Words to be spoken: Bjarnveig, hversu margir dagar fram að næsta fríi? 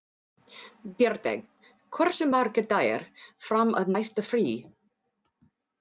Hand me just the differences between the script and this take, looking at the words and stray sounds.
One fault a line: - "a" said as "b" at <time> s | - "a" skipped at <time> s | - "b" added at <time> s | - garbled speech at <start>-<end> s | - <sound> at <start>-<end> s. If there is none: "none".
none